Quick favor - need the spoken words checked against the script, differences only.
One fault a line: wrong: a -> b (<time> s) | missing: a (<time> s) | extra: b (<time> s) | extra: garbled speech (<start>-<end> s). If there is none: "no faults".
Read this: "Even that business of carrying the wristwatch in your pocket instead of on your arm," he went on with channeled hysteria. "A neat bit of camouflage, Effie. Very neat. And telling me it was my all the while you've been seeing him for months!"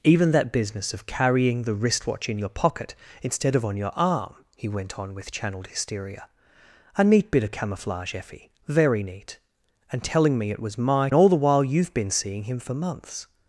no faults